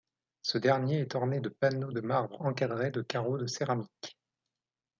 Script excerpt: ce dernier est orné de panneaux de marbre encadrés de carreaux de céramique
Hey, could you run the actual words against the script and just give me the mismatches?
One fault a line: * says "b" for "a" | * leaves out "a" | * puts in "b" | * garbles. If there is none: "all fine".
all fine